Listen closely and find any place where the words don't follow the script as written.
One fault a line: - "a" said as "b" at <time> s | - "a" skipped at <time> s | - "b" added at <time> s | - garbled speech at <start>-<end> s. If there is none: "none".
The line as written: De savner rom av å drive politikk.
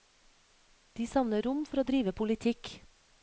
- "av" said as "for" at 1.7 s